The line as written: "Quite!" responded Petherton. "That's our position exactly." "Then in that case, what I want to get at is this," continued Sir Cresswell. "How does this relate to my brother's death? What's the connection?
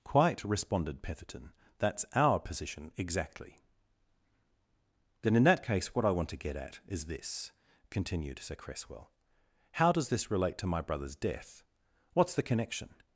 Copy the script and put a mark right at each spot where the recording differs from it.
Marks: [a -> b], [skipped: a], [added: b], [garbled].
"Quite!" responded Petherton. "That's our position exactly." "Then in that case, what I want to get at is this," continued Sir Cresswell. "How does this relate to my brother's death? What's the connection?